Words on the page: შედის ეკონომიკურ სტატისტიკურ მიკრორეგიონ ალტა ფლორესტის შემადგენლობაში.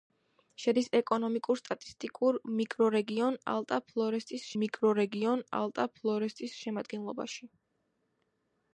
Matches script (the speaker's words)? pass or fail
fail